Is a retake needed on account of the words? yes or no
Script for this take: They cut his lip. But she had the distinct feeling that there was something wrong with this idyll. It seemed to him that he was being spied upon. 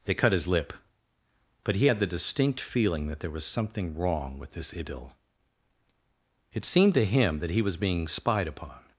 yes